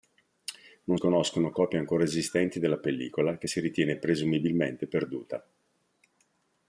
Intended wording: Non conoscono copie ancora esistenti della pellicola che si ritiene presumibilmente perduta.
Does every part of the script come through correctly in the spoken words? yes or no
yes